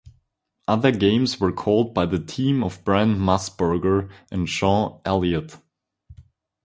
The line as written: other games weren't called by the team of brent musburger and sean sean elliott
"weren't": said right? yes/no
no